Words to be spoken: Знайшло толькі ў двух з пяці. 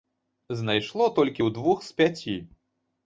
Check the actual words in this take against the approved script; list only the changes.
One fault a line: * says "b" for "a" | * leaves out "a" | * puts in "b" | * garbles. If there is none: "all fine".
all fine